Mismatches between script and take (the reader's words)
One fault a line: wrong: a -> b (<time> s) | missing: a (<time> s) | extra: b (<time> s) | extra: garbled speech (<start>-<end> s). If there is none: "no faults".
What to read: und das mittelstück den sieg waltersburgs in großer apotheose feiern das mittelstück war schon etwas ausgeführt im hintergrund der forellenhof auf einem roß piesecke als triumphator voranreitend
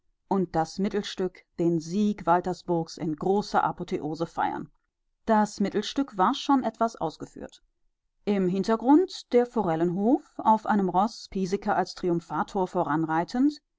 no faults